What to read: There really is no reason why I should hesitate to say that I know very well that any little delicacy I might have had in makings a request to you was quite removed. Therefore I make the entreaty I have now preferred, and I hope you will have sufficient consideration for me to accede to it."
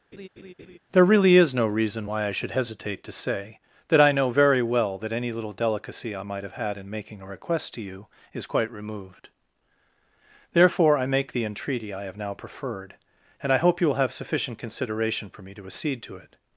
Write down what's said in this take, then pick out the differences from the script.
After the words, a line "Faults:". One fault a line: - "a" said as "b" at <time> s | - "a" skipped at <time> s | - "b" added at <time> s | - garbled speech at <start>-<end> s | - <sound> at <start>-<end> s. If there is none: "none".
There really is no reason why I should hesitate to say that I know very well that any little delicacy I might have had in making a request to you is quite removed. Therefore I make the entreaty I have now preferred, and I hope you will have sufficient consideration for me to accede to it."
Faults:
- laugh at 0.1-0.8 s
- "makings" said as "making" at 6.9 s
- "was" said as "is" at 8.3 s